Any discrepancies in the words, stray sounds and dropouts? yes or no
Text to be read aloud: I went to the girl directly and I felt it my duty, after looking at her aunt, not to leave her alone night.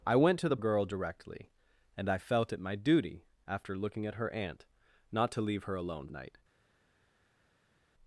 no